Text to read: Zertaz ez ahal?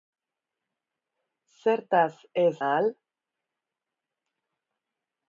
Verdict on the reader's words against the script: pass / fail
pass